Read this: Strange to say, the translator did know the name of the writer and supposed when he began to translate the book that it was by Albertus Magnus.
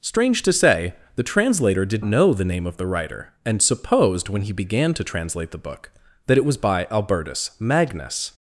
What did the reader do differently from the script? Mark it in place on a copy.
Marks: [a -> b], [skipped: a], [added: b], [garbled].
Strange to say, the translator did know the name of the writer and supposed when he began to translate the book that it was by Albertus Magnus.